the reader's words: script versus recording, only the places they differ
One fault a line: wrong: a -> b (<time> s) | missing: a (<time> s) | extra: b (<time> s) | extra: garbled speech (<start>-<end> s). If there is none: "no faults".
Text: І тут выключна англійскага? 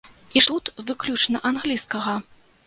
no faults